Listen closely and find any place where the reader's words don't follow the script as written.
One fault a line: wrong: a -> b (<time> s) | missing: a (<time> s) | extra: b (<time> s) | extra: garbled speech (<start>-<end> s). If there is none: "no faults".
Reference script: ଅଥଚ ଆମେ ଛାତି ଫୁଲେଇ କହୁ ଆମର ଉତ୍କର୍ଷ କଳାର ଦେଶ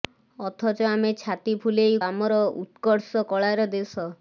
missing: କହୁ (2.0 s)